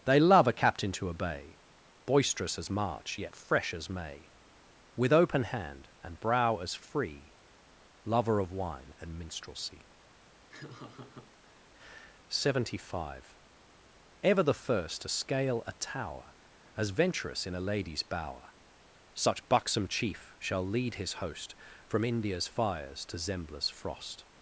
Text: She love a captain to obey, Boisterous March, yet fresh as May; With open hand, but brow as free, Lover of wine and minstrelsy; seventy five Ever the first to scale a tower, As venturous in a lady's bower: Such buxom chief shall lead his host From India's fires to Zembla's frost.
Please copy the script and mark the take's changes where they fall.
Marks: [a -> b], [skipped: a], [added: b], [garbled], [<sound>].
[She -> They] love a captain to obey, Boisterous [added: as] March, yet fresh as May; With open hand, [but -> and] brow as free, Lover of wine and minstrelsy; [laugh] seventy five Ever the first to scale a tower, As venturous in a lady's bower: Such buxom chief shall lead his host From India's fires to Zembla's frost.